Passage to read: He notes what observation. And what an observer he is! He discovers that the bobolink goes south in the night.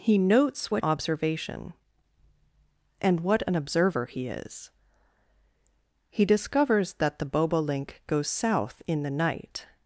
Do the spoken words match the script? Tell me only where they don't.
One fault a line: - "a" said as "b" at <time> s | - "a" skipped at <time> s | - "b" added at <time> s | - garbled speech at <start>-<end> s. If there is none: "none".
none